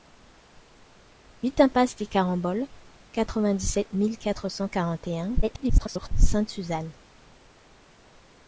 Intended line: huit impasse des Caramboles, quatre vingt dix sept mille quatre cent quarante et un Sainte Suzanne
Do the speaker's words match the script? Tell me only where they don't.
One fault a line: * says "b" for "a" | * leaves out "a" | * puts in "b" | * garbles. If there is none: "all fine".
* garbles